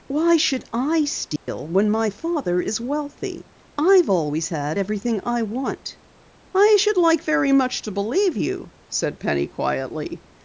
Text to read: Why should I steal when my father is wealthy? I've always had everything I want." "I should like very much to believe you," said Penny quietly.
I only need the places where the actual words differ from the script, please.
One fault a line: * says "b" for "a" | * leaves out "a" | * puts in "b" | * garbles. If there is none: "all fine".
all fine